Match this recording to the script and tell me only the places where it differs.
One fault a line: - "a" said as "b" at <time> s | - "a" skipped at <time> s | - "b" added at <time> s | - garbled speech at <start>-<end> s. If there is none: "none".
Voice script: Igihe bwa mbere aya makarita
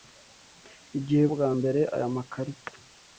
none